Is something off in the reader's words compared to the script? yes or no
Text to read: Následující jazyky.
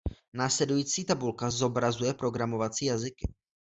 yes